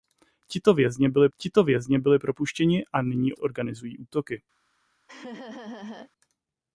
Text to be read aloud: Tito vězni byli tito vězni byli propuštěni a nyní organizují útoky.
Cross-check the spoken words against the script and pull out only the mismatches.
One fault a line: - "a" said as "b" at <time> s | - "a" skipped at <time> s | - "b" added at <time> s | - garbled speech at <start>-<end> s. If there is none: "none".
none